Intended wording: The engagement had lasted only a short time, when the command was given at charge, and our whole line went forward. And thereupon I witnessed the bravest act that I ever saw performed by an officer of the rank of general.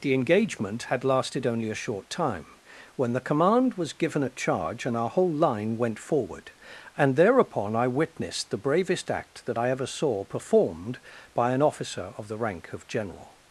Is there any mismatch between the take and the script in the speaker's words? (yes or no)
no